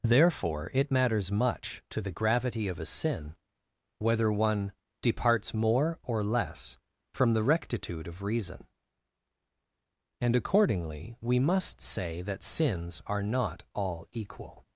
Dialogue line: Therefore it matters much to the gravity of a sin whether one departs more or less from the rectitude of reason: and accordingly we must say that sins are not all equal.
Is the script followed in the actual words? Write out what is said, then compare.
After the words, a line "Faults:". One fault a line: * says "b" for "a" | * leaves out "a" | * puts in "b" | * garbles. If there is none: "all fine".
Therefore it matters much to the gravity of a sin whether one departs more or less from the rectitude of reason: and accordingly we must say that sins are not all equal.
Faults:
all fine